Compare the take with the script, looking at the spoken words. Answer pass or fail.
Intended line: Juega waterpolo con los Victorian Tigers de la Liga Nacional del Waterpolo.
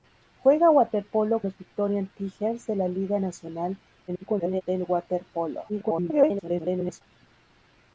fail